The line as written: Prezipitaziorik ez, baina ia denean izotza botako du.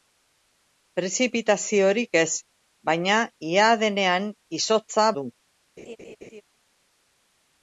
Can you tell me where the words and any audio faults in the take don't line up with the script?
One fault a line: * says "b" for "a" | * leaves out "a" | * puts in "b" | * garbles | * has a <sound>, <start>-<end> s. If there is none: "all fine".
* leaves out "botako"
* has a laugh, 5.8-6.4 s